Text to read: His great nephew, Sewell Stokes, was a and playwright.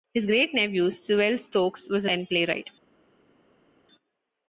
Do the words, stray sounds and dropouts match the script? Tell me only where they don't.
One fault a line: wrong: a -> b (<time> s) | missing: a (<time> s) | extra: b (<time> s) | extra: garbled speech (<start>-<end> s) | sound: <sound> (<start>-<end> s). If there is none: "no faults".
no faults